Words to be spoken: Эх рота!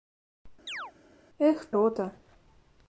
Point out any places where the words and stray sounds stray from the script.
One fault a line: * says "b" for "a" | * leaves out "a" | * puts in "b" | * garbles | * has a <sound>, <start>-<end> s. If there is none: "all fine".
* has a chirp, 0.7-0.9 s